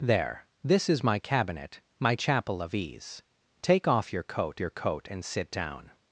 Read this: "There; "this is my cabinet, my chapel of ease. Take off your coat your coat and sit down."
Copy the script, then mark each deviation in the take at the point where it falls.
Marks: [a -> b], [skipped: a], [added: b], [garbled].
"There; "this is my cabinet, my chapel of ease. Take off your coat your coat and sit down."